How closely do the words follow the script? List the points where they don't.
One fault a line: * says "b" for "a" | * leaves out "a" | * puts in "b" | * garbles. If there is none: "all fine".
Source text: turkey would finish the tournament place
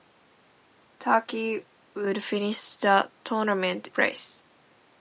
all fine